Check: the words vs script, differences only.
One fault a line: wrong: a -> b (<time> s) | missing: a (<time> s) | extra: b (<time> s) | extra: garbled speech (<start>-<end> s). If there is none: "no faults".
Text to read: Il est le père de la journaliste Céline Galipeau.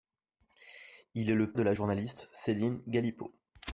missing: père (1.5 s)